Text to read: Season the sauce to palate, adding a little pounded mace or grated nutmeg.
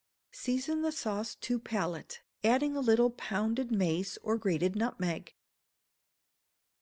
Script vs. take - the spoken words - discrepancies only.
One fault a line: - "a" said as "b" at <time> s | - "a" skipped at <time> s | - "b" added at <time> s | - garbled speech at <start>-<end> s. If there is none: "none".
none